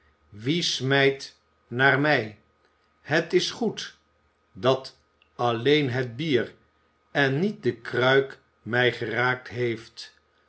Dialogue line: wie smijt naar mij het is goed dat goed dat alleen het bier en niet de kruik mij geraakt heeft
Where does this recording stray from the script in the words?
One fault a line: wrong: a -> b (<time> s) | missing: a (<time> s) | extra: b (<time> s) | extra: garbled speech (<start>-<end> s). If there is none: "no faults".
missing: goed dat (5.0 s)